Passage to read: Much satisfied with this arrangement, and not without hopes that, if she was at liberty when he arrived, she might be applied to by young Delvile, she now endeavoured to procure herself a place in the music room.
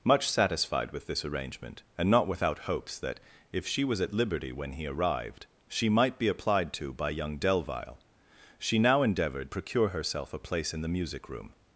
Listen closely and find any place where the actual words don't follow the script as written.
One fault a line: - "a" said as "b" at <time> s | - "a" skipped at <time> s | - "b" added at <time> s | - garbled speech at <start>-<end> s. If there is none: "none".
- "to" skipped at 9.5 s